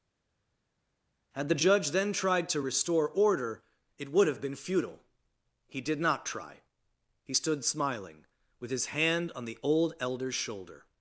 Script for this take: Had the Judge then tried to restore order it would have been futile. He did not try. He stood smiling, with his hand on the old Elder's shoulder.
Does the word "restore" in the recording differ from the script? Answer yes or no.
no